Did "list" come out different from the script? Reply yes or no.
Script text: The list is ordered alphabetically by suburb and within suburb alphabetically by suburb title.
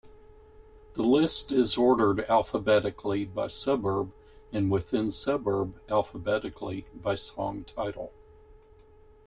no